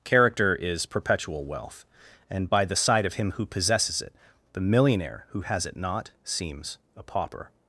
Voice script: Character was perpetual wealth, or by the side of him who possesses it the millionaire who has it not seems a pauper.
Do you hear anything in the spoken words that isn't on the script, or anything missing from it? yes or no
yes